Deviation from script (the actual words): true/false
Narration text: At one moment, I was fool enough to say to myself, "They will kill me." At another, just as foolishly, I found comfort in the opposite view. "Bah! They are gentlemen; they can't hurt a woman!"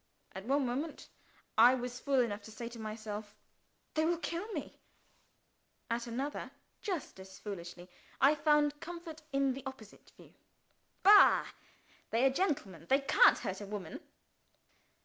false